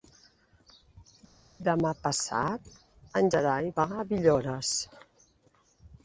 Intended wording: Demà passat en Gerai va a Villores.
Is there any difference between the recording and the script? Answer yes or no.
no